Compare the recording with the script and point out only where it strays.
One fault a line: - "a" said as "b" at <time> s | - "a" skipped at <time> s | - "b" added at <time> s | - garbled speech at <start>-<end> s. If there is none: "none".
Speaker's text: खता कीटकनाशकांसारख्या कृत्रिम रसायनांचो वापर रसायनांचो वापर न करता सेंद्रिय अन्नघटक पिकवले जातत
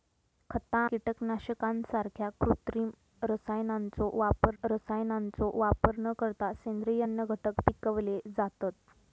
none